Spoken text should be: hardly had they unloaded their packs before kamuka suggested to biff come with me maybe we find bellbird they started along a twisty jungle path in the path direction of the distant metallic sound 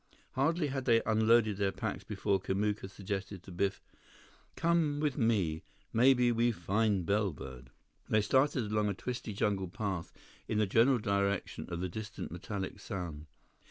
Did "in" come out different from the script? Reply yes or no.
no